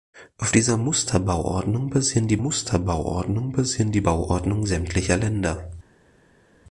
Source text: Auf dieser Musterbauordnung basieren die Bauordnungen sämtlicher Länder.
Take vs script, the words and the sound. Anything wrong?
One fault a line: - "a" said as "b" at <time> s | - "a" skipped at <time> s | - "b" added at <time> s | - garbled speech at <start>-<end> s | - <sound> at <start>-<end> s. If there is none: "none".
- "Musterbauordnung basieren die" added at 2.4 s